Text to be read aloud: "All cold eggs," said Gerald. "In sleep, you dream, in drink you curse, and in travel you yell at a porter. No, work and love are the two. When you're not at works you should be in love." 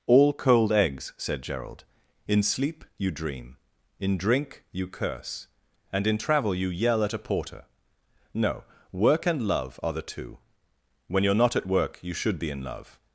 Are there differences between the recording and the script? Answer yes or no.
yes